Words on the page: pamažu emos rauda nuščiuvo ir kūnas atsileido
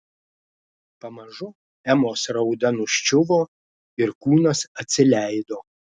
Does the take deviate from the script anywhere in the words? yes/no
no